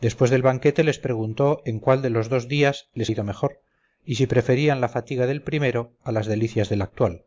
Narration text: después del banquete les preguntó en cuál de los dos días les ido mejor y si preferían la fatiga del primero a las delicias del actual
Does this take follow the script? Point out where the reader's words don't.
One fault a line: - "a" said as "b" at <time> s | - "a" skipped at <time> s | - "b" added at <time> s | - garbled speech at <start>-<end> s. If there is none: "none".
none